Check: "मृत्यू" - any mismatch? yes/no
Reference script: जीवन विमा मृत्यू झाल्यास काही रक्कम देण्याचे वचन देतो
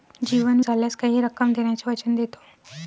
yes